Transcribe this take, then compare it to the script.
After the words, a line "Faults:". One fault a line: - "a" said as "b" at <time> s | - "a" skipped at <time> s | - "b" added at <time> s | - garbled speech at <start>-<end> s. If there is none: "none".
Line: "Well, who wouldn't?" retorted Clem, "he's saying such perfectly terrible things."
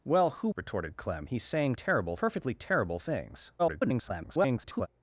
"Well, who?" retorted Clem, "he's saying terrible perfectly terrible things." [garbled]
Faults:
- "wouldn't" skipped at 0.5 s
- "such" said as "terrible" at 1.7 s
- garbled speech at 3.6-4.9 s